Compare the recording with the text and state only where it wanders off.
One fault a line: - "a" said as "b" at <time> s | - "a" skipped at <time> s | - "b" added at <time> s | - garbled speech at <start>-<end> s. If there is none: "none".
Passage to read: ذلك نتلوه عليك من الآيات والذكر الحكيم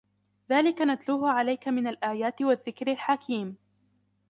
none